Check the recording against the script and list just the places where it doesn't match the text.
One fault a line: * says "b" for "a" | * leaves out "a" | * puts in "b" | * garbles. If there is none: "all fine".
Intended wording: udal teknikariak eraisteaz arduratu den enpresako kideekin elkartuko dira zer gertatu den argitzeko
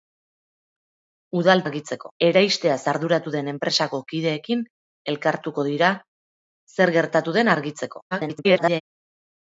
* says "argitzeko" for "teknikariak"
* garbles